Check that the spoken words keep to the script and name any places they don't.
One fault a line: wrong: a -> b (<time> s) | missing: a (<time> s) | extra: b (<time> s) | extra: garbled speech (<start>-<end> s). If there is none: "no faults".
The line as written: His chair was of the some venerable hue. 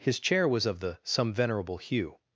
no faults